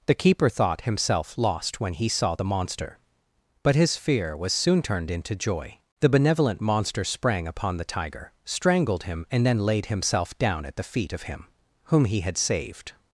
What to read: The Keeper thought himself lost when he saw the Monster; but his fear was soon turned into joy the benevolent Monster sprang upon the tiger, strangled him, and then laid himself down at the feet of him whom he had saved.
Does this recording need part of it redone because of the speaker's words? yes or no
no